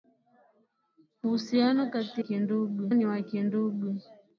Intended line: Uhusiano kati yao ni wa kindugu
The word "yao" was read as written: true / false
false